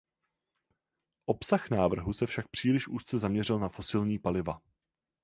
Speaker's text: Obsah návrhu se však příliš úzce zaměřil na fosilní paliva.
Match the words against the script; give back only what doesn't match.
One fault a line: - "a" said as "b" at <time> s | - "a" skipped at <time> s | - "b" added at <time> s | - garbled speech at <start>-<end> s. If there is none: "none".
none